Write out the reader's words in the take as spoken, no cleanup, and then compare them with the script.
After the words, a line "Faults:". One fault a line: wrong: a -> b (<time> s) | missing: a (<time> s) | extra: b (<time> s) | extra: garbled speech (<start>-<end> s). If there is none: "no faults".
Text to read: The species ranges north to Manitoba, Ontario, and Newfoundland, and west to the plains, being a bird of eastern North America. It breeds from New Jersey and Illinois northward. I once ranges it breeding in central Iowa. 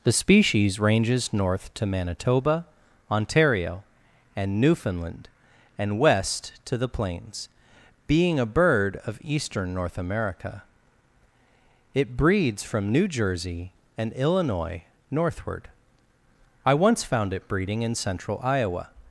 The species ranges north to Manitoba, Ontario, and Newfoundland, and west to the plains, being a bird of eastern North America. It breeds from New Jersey and Illinois northward. I once found it breeding in central Iowa.
Faults:
wrong: ranges -> found (17.0 s)